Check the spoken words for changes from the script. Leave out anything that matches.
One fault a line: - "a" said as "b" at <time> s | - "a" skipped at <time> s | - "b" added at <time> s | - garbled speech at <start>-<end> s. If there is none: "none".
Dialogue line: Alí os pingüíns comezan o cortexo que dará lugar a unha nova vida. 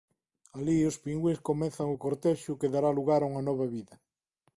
none